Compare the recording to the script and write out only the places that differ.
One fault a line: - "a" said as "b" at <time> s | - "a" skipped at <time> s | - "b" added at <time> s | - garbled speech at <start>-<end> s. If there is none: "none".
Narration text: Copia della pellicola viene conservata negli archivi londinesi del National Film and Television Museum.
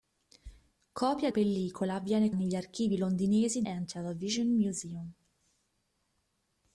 - "della" skipped at 1.3 s
- "conservata" skipped at 2.3 s
- "del National Film" skipped at 3.6 s